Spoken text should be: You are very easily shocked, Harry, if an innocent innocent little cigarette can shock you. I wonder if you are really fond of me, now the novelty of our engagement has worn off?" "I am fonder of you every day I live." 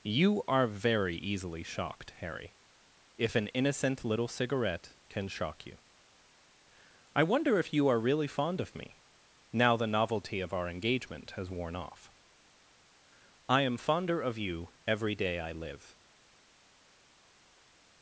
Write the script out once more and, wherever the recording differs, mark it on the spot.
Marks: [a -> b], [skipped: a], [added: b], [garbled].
You are very easily shocked, Harry, if an innocent [skipped: innocent] little cigarette can shock you. I wonder if you are really fond of me, now the novelty of our engagement has worn off?" "I am fonder of you every day I live."